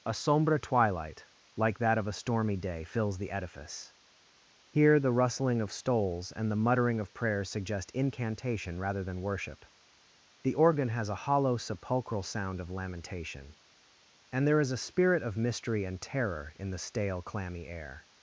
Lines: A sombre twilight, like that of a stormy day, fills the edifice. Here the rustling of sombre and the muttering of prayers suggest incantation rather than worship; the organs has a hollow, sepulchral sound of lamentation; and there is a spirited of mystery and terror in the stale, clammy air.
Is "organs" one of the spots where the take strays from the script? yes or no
yes